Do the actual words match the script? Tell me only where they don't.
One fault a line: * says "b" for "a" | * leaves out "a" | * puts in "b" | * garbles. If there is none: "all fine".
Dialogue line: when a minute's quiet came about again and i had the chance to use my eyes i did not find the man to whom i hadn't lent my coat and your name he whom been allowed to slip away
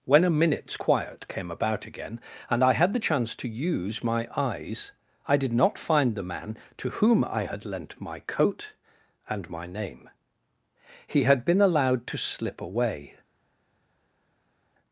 * says "had" for "hadn't"
* says "my" for "your"
* says "had" for "whom"